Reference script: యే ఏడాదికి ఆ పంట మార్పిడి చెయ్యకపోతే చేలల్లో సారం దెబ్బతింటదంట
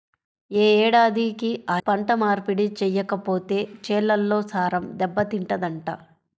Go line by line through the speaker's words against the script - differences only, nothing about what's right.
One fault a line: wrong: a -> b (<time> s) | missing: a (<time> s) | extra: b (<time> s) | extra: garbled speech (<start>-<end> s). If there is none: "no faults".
no faults